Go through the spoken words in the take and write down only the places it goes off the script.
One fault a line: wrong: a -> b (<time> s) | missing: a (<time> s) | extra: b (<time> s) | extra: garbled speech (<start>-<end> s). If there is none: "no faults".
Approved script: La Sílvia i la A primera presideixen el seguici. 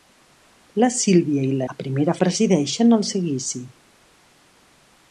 no faults